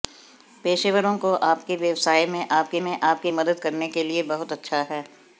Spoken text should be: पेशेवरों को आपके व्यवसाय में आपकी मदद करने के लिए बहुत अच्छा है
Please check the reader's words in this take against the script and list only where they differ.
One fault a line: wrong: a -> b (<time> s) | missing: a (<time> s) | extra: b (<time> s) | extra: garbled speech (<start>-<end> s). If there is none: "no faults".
extra: में आपकी (2.8 s)